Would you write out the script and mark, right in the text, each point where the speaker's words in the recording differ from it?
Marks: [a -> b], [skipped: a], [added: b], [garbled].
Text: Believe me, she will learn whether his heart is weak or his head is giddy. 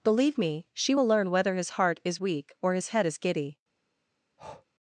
Believe me, she will learn whether his heart is weak or his head is giddy.